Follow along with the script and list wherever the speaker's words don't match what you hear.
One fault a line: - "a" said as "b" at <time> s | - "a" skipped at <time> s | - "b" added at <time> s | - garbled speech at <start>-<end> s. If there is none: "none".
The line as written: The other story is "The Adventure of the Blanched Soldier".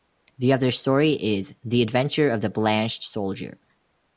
none